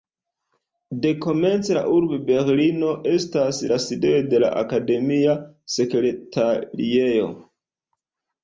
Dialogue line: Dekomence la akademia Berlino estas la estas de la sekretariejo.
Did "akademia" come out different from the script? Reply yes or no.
yes